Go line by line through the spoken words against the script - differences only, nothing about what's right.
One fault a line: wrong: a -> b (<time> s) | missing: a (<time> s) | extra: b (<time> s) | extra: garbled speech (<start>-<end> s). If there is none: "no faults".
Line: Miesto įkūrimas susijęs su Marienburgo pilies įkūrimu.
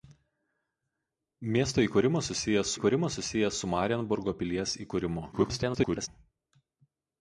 extra: įkūrimas susijęs (2.7 s)
extra: garbled speech (5.3-6.1 s)